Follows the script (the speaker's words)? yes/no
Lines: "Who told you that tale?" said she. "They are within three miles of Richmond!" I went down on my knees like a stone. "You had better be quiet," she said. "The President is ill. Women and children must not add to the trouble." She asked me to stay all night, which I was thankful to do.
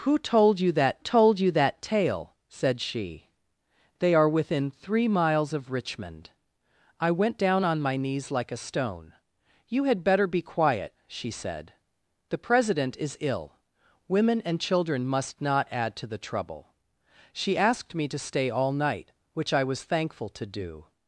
no